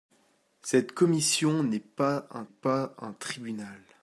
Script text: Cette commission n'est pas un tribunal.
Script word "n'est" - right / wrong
right